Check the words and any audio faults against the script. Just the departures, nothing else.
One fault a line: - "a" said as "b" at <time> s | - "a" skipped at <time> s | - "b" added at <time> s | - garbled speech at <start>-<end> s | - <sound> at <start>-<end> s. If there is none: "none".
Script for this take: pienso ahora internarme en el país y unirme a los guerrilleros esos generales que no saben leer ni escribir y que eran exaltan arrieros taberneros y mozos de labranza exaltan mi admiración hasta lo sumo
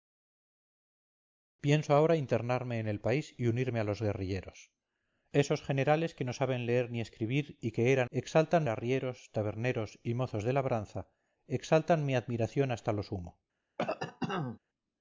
- cough at 13.8-14.6 s